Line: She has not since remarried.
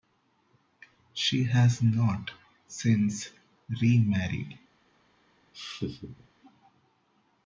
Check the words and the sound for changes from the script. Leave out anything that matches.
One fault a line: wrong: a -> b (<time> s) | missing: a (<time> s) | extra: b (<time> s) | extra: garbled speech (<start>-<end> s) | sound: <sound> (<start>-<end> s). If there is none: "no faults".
sound: laugh (5.5-6.3 s)